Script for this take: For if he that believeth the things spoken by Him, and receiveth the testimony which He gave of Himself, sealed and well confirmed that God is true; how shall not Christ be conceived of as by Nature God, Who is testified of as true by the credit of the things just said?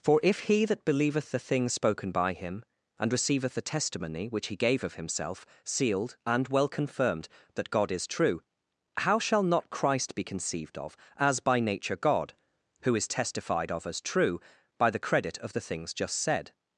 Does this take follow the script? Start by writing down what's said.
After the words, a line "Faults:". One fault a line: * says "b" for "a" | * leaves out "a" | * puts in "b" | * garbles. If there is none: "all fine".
For if he that believeth the things spoken by Him, and receiveth the testimony which He gave of Himself, sealed and well confirmed that God is true; how shall not Christ be conceived of as by Nature God, Who is testified of as true by the credit of the things just said?
Faults:
all fine